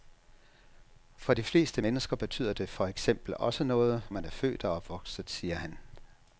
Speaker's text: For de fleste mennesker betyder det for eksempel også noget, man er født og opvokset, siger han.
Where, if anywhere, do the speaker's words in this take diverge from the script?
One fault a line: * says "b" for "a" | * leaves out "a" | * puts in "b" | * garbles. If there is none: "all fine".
all fine